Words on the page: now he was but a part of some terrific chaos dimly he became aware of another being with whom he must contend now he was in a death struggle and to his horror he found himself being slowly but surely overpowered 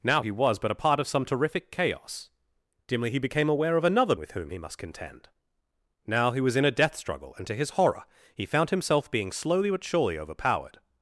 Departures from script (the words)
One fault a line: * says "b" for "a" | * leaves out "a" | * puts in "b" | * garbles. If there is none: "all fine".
* leaves out "being"